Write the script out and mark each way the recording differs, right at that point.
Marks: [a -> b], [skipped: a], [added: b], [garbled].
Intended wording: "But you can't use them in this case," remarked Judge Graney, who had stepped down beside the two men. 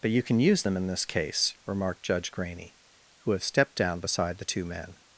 "But you [can't -> can] use them in this case," remarked Judge Graney, who [had -> have] stepped down beside the two men.